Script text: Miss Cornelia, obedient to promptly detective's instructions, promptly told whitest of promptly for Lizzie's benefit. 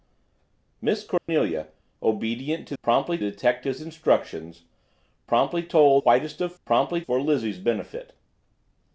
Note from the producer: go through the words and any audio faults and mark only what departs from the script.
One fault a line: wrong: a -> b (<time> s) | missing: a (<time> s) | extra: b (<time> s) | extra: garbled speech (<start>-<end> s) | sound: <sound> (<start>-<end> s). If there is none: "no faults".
sound: dropout (1.2-1.3 s)